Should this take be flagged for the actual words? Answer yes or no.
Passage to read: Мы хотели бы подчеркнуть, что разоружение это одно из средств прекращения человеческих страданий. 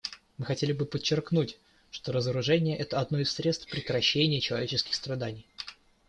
no